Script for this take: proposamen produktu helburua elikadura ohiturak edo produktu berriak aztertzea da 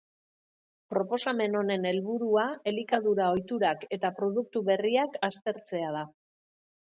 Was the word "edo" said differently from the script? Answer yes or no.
yes